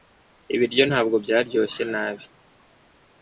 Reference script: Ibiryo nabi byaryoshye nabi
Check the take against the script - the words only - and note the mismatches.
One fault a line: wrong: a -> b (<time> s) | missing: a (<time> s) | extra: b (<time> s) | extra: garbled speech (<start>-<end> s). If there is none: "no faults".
wrong: nabi -> ntabwo (0.9 s)